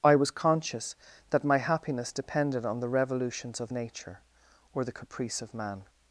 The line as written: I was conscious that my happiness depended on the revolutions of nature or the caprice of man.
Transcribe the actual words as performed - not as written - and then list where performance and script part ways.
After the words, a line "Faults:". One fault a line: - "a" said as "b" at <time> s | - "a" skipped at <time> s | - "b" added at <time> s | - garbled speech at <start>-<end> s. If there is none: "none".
I was conscious that my happiness depended on the revolutions of nature or the caprice of man.
Faults:
none